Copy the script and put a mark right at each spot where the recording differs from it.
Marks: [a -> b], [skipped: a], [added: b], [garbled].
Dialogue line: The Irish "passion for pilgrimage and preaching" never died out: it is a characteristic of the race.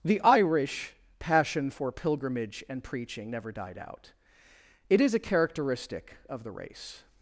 The Irish "passion for pilgrimage and preaching" never died out: it is a characteristic of the race.